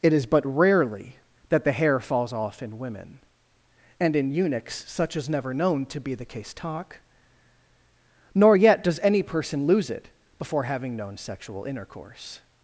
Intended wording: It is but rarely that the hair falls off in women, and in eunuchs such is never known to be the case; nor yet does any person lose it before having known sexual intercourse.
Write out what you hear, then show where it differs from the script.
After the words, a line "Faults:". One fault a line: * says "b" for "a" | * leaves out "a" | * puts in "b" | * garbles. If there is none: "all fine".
It is but rarely that the hair falls off in women, and in eunuchs such is never known to be the case; talk nor yet does any person lose it before having known sexual intercourse.
Faults:
* puts in "talk"